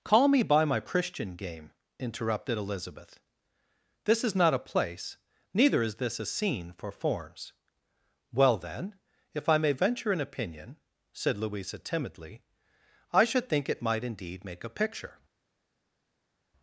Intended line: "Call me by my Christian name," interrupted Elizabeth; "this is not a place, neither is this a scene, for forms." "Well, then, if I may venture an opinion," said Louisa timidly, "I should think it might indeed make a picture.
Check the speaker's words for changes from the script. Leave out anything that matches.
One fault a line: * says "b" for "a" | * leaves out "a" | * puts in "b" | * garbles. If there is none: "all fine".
* says "game" for "name"